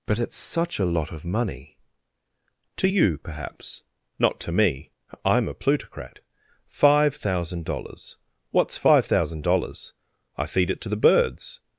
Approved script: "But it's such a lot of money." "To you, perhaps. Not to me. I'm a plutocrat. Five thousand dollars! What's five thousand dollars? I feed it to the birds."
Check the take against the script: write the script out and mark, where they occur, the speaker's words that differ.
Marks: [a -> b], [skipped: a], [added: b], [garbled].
"But it's such a lot of money." "To you, perhaps. Not to me. I'm a plutocrat. Five thousand dollars! What's five thousand dollars? I feed it to the birds."